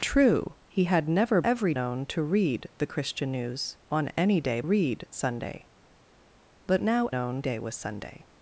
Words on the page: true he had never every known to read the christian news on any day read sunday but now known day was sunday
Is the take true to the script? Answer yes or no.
yes